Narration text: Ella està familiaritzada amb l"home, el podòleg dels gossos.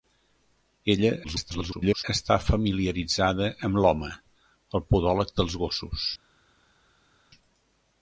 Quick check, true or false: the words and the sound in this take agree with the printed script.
false